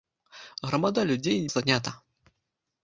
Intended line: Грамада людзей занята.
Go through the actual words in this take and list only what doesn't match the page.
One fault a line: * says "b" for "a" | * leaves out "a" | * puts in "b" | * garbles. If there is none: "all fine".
all fine